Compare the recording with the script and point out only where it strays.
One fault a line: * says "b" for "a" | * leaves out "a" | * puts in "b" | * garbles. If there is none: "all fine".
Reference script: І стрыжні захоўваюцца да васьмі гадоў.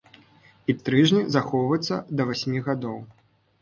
all fine